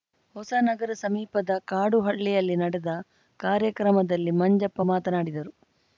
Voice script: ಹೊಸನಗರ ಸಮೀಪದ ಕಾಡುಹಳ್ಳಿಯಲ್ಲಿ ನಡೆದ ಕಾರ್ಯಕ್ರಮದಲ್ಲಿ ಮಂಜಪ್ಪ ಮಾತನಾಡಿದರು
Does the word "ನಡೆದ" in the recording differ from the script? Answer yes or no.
no